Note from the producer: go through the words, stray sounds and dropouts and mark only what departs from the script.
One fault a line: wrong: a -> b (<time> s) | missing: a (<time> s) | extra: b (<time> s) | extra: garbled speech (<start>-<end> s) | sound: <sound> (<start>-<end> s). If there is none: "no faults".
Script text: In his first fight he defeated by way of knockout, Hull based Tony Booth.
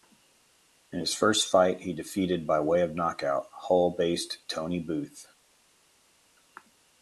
no faults